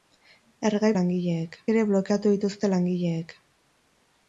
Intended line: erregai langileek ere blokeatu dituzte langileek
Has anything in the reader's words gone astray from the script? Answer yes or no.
no